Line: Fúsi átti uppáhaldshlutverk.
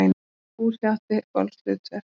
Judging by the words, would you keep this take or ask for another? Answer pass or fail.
pass